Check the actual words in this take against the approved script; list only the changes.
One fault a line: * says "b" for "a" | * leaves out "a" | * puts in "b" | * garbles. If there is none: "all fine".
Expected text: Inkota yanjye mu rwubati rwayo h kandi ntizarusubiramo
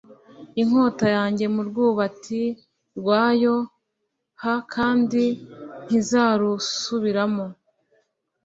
all fine